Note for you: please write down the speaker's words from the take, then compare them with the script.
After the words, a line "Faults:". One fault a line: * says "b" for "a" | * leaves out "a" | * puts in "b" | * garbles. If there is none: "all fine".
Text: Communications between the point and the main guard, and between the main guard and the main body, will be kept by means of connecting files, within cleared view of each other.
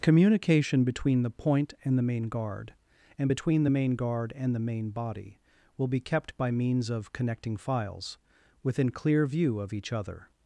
Communication between the point and the main guard, and between the main guard and the main body, will be kept by means of connecting files, within clear view of each other.
Faults:
* says "Communication" for "Communications"
* says "clear" for "cleared"